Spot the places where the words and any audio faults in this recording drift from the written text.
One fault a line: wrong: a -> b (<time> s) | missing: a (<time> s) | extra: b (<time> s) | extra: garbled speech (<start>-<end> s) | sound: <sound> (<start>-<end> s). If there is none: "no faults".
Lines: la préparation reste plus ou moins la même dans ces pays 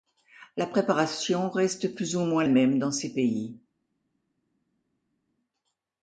missing: la (2.4 s)